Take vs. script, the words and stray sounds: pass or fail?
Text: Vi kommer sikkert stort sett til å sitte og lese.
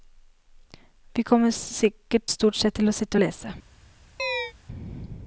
fail